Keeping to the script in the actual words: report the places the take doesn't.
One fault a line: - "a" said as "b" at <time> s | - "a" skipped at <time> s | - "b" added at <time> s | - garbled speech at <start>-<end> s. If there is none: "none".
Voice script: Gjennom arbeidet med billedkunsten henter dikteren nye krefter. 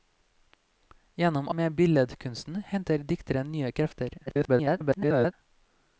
- "arbeidet" skipped at 1.5 s
- garbled speech at 4.3-5.3 s